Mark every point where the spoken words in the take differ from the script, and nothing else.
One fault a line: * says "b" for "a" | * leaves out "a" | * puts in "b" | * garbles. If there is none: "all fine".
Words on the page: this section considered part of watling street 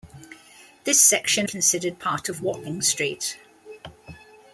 all fine